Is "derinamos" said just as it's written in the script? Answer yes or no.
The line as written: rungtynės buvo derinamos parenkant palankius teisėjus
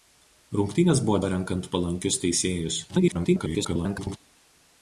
no